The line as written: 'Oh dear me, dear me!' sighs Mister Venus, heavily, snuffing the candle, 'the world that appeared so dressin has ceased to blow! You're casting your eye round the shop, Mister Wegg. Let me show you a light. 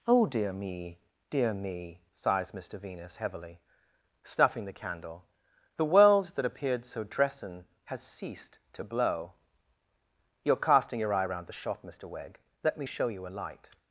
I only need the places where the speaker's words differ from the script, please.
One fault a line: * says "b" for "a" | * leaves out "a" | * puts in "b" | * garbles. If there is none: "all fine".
all fine